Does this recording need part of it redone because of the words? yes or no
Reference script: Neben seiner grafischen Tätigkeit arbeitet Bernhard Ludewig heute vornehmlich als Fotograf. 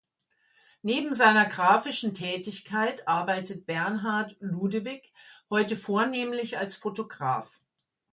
no